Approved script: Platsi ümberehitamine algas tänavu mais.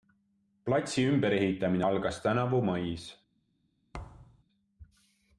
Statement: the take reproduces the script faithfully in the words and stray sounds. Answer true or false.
false